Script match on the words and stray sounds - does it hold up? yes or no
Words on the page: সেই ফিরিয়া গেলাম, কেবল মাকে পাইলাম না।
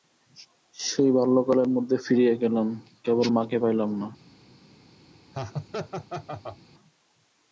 no